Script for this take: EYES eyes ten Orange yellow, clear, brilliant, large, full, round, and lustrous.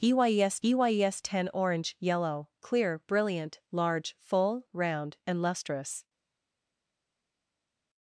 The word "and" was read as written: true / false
true